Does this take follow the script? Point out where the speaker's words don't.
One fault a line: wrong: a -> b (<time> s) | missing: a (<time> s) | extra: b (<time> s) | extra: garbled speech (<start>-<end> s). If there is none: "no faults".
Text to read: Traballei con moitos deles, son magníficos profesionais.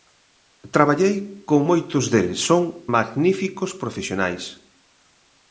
no faults